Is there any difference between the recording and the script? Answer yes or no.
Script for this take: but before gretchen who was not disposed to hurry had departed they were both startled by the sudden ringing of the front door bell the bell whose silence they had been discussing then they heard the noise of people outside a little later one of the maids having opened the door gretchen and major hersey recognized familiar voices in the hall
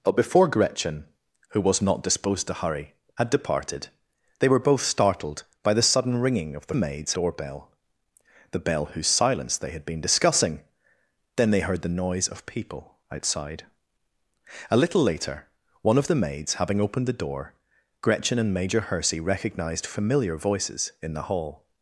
yes